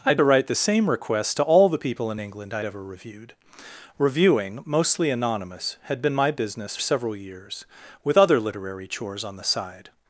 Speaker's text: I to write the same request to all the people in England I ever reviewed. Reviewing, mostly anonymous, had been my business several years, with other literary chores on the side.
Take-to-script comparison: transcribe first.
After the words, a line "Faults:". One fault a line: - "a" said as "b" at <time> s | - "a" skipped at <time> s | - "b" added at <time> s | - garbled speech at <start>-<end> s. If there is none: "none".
I to write the same request to all the people in England I ever reviewed. Reviewing, mostly anonymous, had been my business several years, with other literary chores on the side.
Faults:
none